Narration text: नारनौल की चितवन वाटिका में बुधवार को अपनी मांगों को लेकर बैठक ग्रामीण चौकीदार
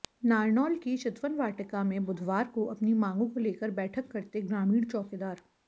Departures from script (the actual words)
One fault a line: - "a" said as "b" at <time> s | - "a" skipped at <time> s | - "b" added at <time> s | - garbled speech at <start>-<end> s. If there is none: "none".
- "करते" added at 4.1 s